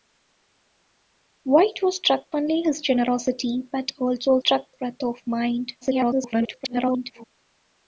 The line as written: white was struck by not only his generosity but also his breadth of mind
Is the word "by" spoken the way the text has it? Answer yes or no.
no